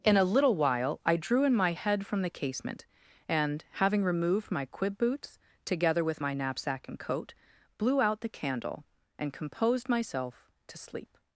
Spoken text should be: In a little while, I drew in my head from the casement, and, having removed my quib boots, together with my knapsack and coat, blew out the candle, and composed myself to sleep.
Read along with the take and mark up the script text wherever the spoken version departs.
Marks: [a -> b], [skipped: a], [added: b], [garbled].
In a little while, I drew in my head from the casement, and, having removed my quib boots, together with my knapsack and coat, blew out the candle, and composed myself to sleep.